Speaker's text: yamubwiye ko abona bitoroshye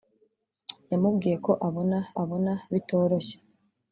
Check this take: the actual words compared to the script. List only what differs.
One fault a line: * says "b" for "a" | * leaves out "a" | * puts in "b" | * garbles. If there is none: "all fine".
* puts in "abona"